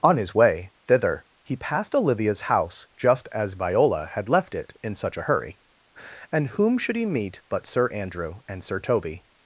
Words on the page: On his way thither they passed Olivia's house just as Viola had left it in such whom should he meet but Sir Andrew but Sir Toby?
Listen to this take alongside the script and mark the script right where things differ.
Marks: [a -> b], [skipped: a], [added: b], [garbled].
On his way thither [they -> he] passed Olivia's house just as Viola had left it in such [added: a hurry and] whom should he meet but Sir Andrew [but -> and] Sir Toby?